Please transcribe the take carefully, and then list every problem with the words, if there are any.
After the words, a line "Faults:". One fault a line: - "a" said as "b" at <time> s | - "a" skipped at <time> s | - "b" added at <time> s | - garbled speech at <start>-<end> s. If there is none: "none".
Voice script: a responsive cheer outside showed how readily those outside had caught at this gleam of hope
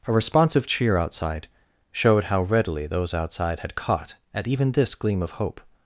a responsive cheer outside showed how readily those outside had caught at even this gleam of hope
Faults:
- "even" added at 4.5 s